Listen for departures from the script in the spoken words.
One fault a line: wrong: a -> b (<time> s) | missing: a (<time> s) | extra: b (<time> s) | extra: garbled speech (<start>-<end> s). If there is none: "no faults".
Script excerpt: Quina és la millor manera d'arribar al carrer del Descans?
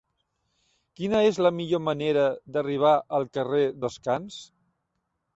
missing: del (3.6 s)